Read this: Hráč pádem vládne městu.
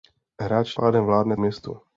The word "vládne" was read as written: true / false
true